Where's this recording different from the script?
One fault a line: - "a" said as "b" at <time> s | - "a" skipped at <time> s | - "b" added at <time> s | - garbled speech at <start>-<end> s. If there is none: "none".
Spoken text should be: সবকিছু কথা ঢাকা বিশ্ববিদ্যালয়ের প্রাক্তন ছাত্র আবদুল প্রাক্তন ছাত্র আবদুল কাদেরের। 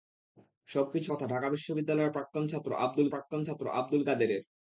none